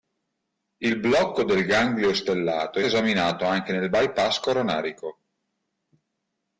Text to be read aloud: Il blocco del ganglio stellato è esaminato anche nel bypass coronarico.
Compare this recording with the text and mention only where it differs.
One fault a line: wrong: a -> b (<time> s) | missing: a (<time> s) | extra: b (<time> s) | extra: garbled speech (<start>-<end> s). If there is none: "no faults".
no faults